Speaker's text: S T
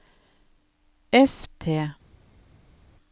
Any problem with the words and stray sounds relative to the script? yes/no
no